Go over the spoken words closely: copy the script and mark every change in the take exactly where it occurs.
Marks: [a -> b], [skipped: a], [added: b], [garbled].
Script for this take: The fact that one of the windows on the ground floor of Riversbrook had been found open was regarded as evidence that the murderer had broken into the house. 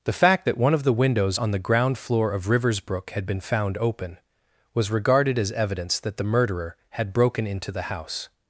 The fact that one of the windows on the ground floor of Riversbrook had been found open was regarded as evidence that the murderer had broken into the house.